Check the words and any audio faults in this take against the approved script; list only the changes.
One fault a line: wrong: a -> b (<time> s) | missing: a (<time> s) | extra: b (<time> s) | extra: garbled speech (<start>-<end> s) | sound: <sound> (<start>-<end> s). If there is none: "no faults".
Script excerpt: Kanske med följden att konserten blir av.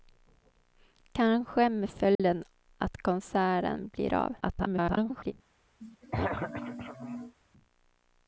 sound: dropout (2.1-2.2 s)
extra: garbled speech (4.4-5.3 s)
sound: throat clearing (5.8-7.3 s)